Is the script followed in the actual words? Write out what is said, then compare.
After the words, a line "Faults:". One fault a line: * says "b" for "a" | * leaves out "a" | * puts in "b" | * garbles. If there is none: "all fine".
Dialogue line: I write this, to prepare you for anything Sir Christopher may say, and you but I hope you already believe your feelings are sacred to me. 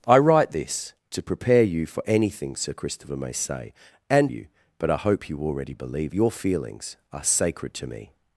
I write this, to prepare you for anything Sir Christopher may say, and you but I hope you already believe your feelings are sacred to me.
Faults:
all fine